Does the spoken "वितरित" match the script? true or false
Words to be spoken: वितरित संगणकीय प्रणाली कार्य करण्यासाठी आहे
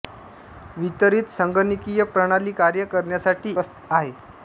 true